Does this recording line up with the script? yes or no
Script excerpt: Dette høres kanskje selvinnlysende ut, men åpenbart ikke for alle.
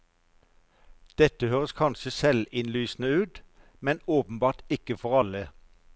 yes